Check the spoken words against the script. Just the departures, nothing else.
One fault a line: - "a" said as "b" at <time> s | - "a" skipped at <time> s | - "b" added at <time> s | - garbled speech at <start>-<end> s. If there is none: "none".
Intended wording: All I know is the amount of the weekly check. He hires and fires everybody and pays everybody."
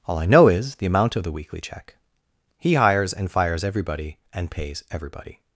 none